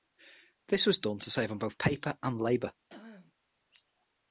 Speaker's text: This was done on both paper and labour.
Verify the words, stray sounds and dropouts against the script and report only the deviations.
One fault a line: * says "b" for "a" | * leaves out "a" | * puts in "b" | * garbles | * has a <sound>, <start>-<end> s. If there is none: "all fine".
* puts in "to save"
* has a throat clearing, 2.9-3.3 s